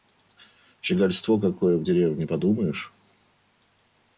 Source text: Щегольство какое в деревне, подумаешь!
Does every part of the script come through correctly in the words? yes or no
yes